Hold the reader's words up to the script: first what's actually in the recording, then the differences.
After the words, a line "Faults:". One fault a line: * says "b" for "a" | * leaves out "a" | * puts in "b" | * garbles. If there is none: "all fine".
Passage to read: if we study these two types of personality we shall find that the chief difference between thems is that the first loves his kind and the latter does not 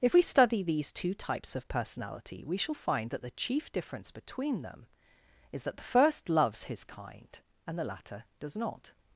if we study these two types of personality we shall find that the chief difference between them is that the first loves his kind and the latter does not
Faults:
* says "them" for "thems"